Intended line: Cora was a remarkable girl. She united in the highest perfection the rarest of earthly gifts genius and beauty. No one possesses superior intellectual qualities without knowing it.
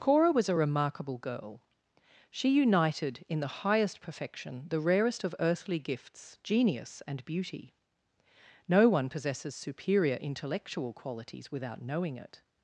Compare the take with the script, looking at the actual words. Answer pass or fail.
pass